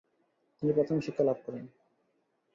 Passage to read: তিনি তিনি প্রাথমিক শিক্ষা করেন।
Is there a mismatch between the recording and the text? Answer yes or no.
yes